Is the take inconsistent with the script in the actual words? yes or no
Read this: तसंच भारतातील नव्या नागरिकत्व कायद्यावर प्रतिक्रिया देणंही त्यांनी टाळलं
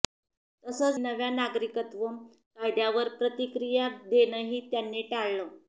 yes